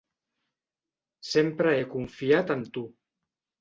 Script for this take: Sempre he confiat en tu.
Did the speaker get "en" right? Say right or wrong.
right